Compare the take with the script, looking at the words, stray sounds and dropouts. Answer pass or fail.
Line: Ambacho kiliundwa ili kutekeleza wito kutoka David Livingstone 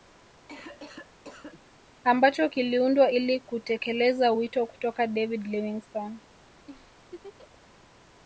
fail